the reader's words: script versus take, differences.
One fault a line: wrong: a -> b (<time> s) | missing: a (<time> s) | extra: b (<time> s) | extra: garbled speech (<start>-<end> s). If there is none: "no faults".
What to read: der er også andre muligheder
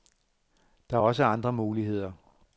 no faults